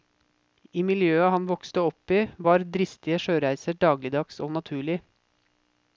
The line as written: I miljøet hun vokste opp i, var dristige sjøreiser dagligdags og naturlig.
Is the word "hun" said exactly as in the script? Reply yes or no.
no